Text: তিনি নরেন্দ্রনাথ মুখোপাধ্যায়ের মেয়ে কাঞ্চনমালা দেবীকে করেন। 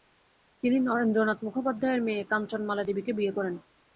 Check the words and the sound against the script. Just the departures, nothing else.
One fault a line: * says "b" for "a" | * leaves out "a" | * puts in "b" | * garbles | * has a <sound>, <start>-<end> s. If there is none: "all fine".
* puts in "বিয়ে"